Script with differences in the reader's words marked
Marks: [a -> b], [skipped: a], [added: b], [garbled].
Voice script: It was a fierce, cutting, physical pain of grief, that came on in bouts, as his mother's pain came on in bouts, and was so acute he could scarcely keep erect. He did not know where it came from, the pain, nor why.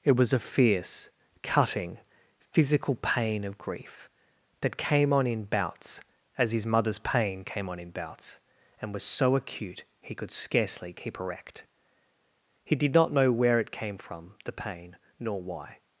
It was a fierce, cutting, physical pain of grief, that came on in bouts, as his mother's pain came on in bouts, and was so acute he could scarcely keep erect. He did not know where it came from, the pain, nor why.